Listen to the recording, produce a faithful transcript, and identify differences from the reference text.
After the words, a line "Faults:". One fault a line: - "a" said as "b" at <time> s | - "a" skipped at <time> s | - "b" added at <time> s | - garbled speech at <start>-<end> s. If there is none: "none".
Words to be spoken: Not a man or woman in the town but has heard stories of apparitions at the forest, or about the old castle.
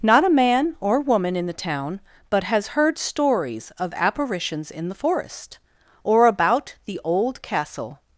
Not a man or woman in the town but has heard stories of apparitions in the forest, or about the old castle.
Faults:
- "at" said as "in" at 4.7 s